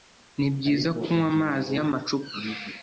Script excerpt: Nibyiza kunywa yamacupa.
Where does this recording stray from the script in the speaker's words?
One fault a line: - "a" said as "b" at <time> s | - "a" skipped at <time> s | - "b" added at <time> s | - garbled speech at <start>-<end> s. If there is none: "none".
- "amazi" added at 1.3 s